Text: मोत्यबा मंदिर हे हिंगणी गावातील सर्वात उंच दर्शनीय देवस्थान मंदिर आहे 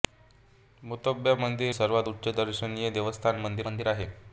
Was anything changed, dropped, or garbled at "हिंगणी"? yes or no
yes